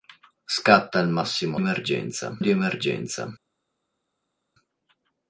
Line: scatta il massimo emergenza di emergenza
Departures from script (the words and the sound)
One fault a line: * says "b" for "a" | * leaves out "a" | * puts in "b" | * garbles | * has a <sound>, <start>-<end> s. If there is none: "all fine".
all fine